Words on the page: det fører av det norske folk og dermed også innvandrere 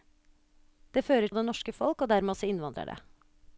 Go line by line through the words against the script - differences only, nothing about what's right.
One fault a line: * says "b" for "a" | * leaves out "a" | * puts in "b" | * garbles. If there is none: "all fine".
all fine